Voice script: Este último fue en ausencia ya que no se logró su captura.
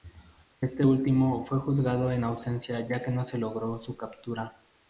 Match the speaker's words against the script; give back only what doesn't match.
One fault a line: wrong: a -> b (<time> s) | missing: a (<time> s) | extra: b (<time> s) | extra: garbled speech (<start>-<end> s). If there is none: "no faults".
extra: juzgado (1.6 s)